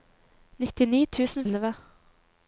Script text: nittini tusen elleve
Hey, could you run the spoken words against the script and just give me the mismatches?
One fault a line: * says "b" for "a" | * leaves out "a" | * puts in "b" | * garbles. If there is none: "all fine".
all fine